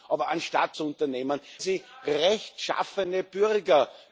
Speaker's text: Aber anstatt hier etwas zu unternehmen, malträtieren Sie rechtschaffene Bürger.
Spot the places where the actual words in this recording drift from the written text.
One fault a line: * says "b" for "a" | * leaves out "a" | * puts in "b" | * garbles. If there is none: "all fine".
* leaves out "hier etwas"
* leaves out "malträtieren"